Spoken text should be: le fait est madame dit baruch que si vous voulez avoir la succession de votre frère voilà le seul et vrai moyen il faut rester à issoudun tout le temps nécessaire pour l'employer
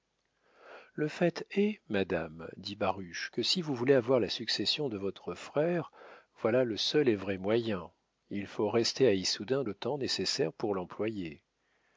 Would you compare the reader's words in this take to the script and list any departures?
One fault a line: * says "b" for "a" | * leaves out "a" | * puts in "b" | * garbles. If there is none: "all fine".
* leaves out "tout"